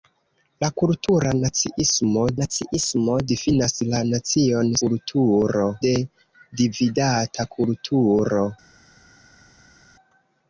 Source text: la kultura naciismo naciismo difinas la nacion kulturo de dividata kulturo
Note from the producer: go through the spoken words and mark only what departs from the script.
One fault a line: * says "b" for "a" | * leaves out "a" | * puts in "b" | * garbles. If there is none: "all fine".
all fine